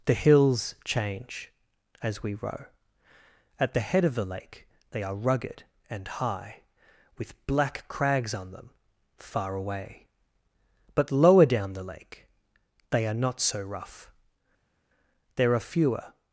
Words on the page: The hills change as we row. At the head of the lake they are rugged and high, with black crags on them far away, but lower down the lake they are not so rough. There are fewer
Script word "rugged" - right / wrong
right